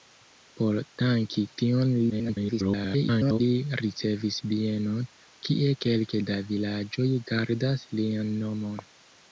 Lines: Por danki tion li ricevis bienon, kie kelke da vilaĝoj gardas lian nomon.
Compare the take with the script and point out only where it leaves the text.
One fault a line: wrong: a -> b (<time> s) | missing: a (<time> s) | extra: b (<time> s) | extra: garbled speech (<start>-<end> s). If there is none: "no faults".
extra: garbled speech (2.1-3.4 s)